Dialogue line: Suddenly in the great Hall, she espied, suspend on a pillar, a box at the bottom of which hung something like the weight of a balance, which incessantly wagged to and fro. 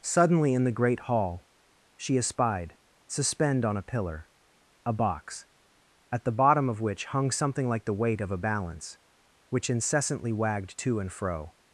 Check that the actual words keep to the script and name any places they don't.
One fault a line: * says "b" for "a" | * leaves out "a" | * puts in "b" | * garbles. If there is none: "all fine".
all fine